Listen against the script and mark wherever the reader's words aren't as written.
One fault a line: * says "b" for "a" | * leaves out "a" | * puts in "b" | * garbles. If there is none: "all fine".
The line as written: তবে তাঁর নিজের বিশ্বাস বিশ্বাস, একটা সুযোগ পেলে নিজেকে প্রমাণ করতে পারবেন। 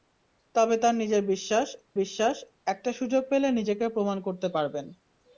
all fine